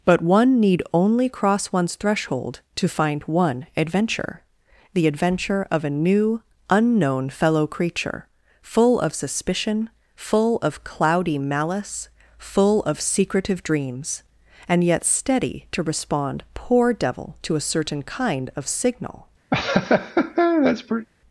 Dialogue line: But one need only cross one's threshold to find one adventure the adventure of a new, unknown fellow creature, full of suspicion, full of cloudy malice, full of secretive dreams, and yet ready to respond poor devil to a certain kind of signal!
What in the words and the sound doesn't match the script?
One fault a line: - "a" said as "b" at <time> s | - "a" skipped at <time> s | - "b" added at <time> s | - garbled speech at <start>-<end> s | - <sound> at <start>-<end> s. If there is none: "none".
- "ready" said as "steady" at 15.1 s
- laugh at 19.5-21.1 s